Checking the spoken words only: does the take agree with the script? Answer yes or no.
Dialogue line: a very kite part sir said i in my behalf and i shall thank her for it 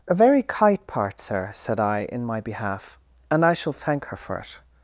yes